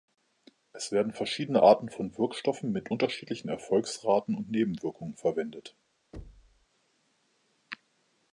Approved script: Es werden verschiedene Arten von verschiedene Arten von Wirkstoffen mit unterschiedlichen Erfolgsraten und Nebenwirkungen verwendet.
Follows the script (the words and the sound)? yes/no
no